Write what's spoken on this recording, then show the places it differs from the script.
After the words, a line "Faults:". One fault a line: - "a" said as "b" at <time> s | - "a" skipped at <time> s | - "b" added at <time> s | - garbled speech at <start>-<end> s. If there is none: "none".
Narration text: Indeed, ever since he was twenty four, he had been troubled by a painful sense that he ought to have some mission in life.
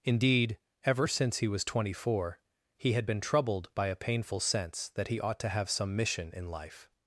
Indeed, ever since he was twenty four, he had been troubled by a painful sense that he ought to have some mission in life.
Faults:
none